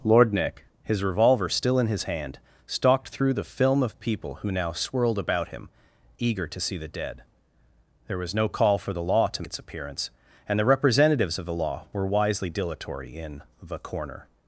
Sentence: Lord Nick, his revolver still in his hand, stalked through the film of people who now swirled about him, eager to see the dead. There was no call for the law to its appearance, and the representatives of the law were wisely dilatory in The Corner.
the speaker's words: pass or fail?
pass